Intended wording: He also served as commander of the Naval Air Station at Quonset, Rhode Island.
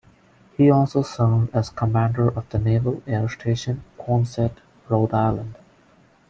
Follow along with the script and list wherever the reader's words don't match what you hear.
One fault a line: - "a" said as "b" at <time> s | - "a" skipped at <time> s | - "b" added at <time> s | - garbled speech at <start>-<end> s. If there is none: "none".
- "at" skipped at 3.8 s